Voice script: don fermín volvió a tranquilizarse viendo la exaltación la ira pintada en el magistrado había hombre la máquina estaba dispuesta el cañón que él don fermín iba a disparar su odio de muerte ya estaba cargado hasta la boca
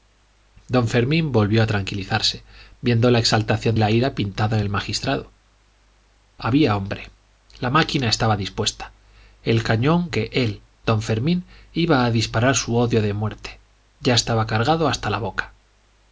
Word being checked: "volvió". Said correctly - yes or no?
yes